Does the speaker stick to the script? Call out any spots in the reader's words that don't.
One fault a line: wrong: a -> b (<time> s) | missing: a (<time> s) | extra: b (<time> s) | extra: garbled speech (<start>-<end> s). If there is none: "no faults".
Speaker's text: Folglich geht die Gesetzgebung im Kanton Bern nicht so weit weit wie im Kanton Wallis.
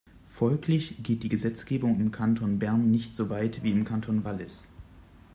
missing: weit (3.6 s)